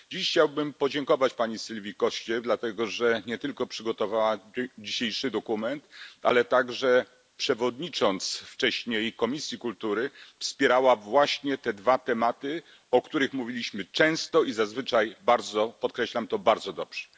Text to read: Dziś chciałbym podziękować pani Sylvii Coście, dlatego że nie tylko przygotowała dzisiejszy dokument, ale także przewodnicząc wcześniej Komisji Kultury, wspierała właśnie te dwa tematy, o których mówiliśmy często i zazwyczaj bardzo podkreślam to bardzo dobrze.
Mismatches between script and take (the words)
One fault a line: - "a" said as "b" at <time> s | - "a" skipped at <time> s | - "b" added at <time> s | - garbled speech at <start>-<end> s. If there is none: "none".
none